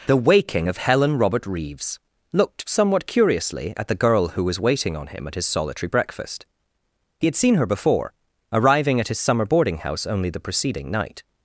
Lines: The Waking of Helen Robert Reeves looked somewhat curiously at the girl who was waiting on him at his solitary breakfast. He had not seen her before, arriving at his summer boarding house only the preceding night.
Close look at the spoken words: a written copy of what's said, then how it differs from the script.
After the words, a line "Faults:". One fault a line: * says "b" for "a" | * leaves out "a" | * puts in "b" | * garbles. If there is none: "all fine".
The Waking of Helen Robert Reeves looked somewhat curiously at the girl who was waiting on him at his solitary breakfast. He had seen her before, arriving at his summer boarding house only the preceding night.
Faults:
* leaves out "not"